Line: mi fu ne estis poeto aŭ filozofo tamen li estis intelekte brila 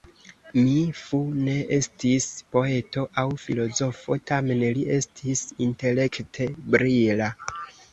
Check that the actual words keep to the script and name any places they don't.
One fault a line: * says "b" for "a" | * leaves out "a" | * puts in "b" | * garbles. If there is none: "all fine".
all fine